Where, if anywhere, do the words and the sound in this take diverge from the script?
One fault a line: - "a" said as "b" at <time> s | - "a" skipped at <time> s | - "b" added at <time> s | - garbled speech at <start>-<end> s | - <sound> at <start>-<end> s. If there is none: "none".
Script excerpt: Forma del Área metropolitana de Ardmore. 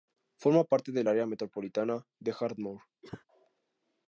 - "parte" added at 0.6 s
- cough at 3.0-3.2 s